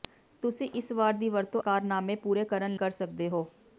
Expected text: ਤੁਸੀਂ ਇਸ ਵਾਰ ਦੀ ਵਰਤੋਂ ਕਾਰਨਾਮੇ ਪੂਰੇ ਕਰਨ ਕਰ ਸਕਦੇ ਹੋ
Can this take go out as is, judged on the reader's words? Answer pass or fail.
pass